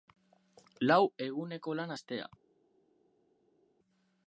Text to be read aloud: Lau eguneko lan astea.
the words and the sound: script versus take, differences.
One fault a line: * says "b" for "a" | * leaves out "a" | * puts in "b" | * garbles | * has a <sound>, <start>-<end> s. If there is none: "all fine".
all fine